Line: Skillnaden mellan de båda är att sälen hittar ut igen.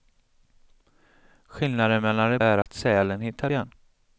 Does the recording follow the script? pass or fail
fail